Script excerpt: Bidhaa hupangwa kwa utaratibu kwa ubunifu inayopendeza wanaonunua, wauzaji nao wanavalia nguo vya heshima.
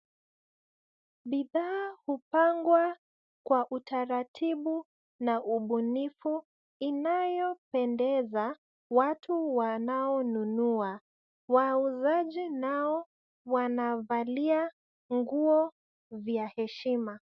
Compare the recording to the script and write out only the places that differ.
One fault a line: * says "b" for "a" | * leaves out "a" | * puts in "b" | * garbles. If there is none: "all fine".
* says "na" for "kwa"
* puts in "watu"